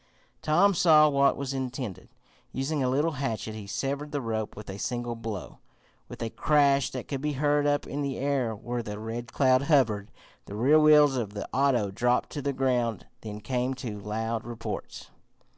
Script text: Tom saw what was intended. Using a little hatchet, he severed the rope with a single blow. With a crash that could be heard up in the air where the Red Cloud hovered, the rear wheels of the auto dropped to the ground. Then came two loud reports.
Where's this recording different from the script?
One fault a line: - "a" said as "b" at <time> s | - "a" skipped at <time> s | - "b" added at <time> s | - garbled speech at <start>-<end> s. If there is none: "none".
none